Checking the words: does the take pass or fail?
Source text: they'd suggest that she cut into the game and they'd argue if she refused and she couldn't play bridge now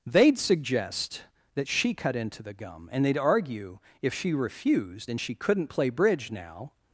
fail